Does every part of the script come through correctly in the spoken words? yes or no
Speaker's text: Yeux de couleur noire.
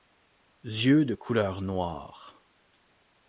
yes